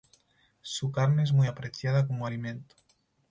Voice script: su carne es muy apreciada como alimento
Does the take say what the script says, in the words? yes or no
yes